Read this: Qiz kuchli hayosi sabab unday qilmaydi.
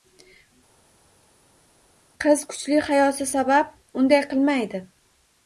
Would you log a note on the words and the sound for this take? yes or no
no